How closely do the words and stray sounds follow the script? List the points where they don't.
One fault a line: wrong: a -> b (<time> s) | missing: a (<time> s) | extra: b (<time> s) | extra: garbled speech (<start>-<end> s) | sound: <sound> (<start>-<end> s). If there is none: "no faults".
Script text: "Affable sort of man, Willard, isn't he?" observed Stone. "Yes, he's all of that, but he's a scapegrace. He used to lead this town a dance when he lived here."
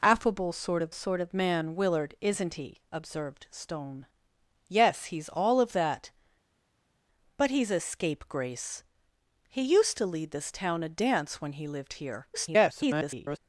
extra: sort of (0.9 s)
extra: garbled speech (12.3-13.4 s)